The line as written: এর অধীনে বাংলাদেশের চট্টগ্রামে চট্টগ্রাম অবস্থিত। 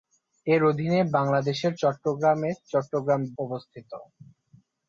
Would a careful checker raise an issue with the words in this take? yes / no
no